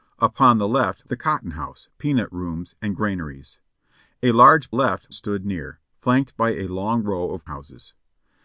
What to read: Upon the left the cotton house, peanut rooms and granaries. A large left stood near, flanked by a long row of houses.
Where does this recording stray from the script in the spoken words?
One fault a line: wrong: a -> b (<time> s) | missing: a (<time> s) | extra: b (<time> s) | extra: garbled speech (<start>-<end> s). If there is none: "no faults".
no faults